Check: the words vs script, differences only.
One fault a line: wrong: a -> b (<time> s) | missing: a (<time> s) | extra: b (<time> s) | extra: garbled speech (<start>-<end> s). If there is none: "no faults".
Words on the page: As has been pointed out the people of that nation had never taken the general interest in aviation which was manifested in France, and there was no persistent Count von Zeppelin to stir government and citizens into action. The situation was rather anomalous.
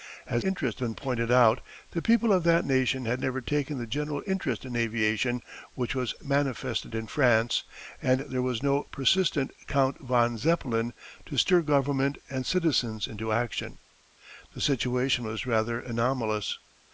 wrong: has -> interest (0.4 s)